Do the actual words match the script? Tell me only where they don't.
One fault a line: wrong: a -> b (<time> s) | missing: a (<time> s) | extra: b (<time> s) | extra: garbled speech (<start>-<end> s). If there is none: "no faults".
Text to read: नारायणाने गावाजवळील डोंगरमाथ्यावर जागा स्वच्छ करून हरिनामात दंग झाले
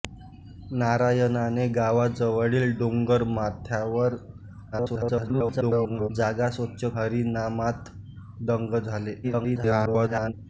extra: garbled speech (4.7-6.1 s)
missing: करून (6.8 s)
extra: garbled speech (9.2-10.3 s)